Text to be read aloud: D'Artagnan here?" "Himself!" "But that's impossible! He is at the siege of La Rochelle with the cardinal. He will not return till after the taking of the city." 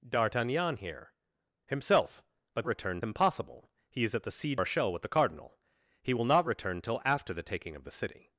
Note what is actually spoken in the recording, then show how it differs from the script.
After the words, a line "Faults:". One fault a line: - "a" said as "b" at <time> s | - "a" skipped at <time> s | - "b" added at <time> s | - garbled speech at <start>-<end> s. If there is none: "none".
D'Artagnan here?" "Himself!" "But return impossible! He is at the siege Rochelle with the cardinal. He will not return till after the taking of the city."
Faults:
- "that's" said as "return" at 2.7 s
- "of La" skipped at 4.6 s